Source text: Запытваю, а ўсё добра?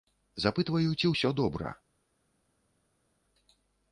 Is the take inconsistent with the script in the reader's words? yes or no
yes